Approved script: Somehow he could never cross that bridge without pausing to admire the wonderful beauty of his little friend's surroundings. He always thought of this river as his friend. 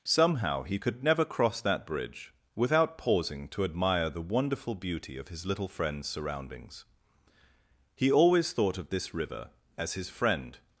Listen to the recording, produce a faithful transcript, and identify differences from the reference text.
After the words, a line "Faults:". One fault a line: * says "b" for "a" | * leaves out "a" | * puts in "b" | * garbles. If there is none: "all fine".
Somehow he could never cross that bridge without pausing to admire the wonderful beauty of his little friend's surroundings. He always thought of this river as his friend.
Faults:
all fine